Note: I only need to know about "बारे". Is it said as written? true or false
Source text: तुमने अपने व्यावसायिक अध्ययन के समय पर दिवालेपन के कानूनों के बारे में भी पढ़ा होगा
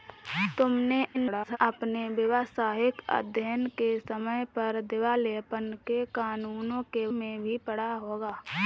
false